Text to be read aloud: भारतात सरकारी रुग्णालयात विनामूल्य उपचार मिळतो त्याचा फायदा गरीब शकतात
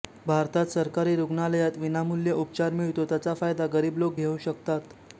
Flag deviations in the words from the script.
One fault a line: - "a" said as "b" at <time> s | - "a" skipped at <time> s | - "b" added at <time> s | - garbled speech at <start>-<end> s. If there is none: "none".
- "लोक घेऊ" added at 4.0 s